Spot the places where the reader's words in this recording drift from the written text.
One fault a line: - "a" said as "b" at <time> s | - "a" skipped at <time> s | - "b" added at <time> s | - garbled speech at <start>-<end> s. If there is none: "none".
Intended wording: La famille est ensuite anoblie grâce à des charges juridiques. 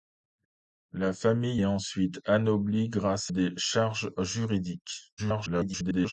- "à" skipped at 3.3 s
- garbled speech at 5.2-6.1 s